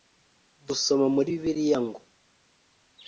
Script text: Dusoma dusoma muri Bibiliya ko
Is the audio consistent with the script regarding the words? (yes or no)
no